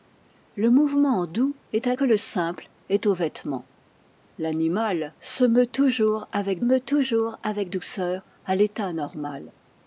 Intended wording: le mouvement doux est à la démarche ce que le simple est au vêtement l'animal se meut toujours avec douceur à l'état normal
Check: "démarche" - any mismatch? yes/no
yes